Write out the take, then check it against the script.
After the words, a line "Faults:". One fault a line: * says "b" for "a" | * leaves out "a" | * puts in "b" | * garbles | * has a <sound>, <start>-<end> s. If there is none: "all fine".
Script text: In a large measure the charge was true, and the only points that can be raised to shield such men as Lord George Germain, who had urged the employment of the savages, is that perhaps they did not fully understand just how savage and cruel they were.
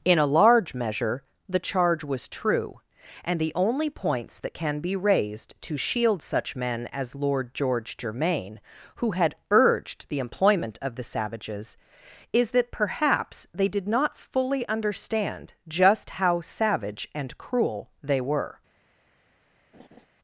In a large measure the charge was true, and the only points that can be raised to shield such men as Lord George Germain, who had urged the employment of the savages, is that perhaps they did not fully understand just how savage and cruel they were.
Faults:
* has a laugh, 19.7-20.1 s